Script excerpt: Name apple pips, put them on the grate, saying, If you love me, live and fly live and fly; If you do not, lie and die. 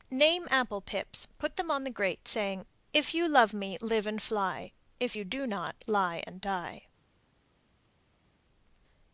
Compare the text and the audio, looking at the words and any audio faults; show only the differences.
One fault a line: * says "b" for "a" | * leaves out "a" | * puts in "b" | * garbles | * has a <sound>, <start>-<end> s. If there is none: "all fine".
* leaves out "live and fly"